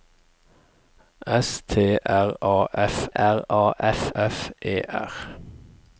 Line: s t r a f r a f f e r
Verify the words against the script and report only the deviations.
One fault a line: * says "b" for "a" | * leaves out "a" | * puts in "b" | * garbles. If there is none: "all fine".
all fine